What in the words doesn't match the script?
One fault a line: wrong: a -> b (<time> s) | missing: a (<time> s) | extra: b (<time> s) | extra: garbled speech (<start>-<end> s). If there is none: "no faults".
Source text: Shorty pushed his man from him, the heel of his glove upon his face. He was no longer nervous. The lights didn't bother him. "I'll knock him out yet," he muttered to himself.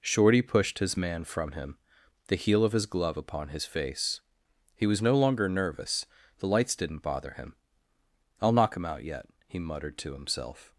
no faults